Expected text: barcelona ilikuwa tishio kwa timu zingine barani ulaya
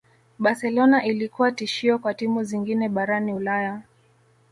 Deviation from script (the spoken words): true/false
false